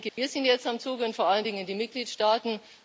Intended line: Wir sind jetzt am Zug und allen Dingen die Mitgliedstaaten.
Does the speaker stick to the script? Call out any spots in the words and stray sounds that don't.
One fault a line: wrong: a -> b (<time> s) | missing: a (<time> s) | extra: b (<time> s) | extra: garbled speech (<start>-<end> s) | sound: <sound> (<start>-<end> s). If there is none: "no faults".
sound: dropout (0.1-0.2 s)
extra: vor (1.1 s)